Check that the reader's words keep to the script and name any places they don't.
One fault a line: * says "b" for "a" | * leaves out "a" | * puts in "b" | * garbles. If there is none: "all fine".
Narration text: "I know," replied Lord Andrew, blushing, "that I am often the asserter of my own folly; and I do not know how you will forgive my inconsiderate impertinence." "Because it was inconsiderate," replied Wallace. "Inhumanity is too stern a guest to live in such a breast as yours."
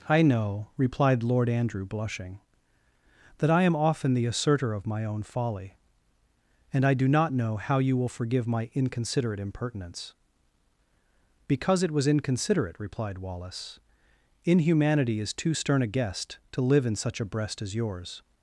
all fine